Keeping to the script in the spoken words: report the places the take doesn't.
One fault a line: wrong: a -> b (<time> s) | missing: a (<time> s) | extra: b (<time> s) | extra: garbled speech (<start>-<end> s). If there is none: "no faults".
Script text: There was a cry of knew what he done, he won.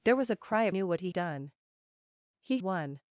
no faults